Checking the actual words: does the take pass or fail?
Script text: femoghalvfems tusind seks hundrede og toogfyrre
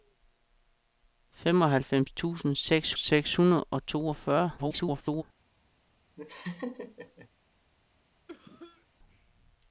fail